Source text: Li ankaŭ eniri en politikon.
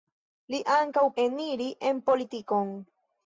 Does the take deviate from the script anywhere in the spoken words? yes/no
no